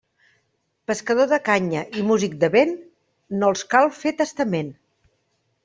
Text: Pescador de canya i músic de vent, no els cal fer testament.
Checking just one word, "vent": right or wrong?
right